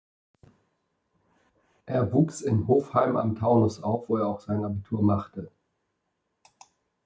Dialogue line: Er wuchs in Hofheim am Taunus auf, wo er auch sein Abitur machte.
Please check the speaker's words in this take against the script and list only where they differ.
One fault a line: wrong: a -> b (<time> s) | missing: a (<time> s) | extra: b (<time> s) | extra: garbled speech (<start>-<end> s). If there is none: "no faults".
no faults